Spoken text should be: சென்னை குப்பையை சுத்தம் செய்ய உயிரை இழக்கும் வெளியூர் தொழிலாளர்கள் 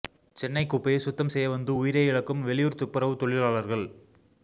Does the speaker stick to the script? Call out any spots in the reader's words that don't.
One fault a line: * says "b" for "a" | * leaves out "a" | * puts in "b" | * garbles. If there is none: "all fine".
* puts in "வந்து"
* puts in "துப்புரவு"